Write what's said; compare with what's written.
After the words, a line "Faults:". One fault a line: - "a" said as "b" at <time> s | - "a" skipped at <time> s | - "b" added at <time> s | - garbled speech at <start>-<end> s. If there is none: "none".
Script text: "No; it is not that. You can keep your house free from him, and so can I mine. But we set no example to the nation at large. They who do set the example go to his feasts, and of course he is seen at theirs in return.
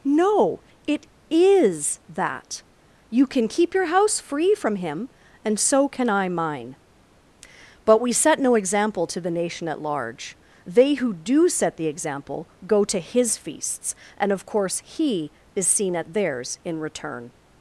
"No; it is that. You can keep your house free from him, and so can I mine. But we set no example to the nation at large. They who do set the example go to his feasts, and of course he is seen at theirs in return.
Faults:
- "not" skipped at 2.0 s